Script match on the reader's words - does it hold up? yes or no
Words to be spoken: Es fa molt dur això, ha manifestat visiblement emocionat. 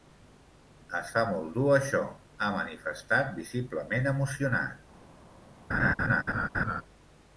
yes